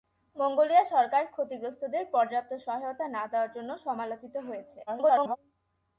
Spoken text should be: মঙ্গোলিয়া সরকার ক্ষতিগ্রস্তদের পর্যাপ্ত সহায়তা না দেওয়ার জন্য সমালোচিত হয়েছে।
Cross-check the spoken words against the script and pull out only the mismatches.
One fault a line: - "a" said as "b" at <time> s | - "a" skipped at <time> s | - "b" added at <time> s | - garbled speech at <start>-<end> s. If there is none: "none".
- garbled speech at 4.9-5.4 s